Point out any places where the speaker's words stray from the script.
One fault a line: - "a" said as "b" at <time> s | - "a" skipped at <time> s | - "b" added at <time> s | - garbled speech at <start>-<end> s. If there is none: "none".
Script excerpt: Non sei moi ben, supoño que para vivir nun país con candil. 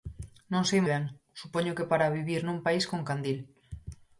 - "moi" skipped at 0.8 s